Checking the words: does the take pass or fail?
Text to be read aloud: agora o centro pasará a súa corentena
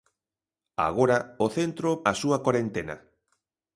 fail